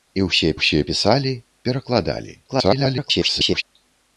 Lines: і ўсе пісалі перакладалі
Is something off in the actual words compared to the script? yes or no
yes